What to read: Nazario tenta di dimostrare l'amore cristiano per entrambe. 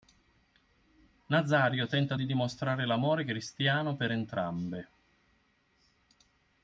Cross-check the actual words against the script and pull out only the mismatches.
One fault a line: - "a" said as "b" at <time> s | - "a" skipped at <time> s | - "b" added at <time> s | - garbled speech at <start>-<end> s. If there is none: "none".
none